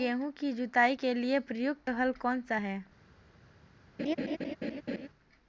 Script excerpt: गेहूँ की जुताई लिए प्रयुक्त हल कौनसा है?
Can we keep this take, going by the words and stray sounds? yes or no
no